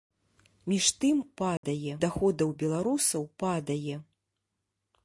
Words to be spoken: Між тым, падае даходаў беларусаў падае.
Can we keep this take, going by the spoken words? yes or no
yes